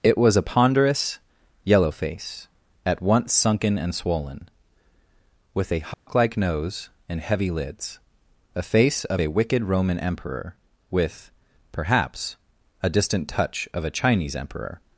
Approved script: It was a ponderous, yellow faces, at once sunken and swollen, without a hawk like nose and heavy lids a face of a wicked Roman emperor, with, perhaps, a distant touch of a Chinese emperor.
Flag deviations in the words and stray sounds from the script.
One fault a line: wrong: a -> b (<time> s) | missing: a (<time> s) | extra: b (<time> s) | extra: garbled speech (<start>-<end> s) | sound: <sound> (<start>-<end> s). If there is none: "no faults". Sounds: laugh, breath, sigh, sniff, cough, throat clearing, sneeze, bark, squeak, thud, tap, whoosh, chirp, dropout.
wrong: faces -> face (1.9 s)
wrong: without -> with (5.5 s)
sound: dropout (5.9-6.1 s)